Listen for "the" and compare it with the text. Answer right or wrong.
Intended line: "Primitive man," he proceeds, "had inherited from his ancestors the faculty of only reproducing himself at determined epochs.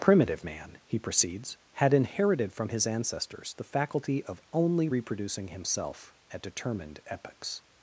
right